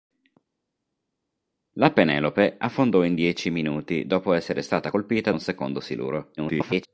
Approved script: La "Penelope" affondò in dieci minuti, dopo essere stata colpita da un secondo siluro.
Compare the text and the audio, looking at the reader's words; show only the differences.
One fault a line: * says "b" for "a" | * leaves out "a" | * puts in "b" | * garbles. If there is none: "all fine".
* leaves out "da"
* garbles